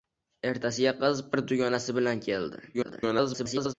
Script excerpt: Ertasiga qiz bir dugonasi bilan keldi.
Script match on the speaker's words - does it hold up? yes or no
no